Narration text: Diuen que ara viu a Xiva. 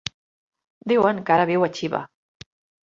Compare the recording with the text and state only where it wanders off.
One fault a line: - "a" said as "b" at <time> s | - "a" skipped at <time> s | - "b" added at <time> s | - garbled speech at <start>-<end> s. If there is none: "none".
none